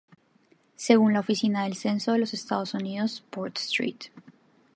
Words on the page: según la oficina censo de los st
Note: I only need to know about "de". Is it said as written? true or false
true